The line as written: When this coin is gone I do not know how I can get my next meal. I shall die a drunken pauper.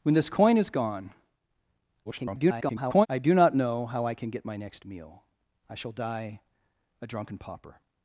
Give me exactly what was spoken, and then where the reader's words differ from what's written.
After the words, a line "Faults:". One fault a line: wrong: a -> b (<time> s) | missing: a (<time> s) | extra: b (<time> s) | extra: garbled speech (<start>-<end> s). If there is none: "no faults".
When this coin is gone [garbled] I do not know how I can get my next meal. I shall die a drunken pauper.
Faults:
extra: garbled speech (2.0-3.1 s)